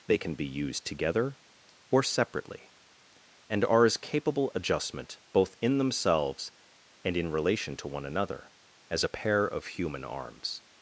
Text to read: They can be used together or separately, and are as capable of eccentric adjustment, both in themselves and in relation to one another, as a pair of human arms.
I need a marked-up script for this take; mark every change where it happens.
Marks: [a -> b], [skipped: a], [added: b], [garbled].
They can be used together or separately, and are as capable [skipped: of eccentric] adjustment, both in themselves and in relation to one another, as a pair of human arms.